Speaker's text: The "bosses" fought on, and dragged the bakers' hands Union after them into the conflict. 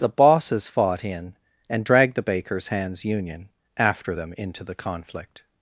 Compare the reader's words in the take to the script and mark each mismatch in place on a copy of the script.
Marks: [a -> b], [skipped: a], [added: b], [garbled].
The "bosses" fought [on, -> in] and dragged the bakers' hands Union after them into the conflict.